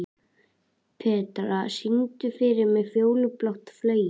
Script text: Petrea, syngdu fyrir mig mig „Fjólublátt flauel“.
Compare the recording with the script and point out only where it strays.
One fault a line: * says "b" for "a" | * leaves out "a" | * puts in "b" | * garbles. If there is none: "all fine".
* leaves out "mig"